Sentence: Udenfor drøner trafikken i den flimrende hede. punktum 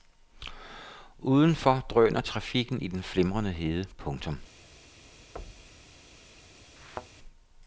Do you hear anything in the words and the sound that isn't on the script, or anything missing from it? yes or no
yes